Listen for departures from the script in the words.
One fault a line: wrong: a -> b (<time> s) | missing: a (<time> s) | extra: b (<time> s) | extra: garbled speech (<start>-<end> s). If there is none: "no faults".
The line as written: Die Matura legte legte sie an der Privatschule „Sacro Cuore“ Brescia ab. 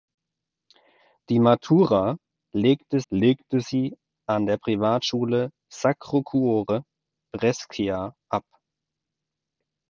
no faults